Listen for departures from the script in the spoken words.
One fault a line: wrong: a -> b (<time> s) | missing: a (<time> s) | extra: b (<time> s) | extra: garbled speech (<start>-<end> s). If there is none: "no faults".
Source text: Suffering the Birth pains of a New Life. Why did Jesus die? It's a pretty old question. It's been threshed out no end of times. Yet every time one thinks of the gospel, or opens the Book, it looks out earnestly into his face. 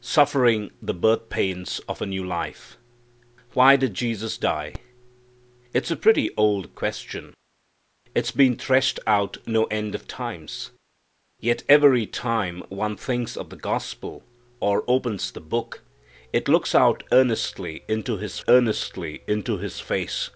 extra: earnestly into his (18.5 s)